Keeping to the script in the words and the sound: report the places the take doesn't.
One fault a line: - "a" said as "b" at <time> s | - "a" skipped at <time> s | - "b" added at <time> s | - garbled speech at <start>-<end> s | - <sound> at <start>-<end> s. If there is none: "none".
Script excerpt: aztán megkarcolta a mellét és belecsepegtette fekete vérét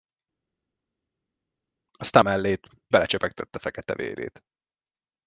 - "megkarcolta" skipped at 2.2 s
- "és" skipped at 2.7 s